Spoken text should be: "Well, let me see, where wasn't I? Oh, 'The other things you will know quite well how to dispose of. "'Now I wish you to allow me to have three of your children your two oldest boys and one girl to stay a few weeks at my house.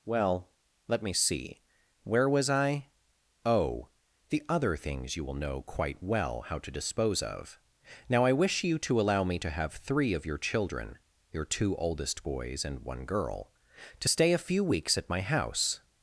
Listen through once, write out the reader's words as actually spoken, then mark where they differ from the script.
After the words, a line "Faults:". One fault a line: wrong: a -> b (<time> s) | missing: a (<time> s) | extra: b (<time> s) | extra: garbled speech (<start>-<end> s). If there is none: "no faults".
"Well, let me see, where was I? Oh, 'The other things you will know quite well how to dispose of. "'Now I wish you to allow me to have three of your children your two oldest boys and one girl to stay a few weeks at my house.
Faults:
wrong: wasn't -> was (2.3 s)